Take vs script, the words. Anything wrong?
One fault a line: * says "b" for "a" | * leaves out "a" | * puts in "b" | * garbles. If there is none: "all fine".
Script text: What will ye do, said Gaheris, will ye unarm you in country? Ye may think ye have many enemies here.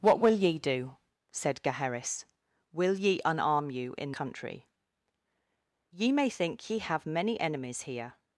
all fine